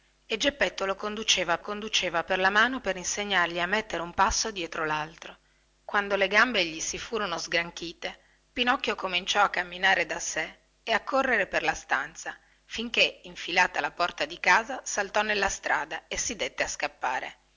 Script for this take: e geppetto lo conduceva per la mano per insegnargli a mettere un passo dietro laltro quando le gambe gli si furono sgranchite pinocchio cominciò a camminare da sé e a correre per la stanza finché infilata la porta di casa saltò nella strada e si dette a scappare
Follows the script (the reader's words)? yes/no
no